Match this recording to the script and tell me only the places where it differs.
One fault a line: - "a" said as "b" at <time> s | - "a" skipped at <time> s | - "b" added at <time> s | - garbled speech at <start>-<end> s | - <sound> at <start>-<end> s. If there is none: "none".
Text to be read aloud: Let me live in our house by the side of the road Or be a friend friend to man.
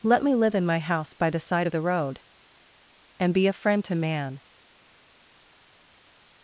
- "our" said as "my" at 0.7 s
- "Or" said as "And" at 3.2 s
- "friend" skipped at 3.8 s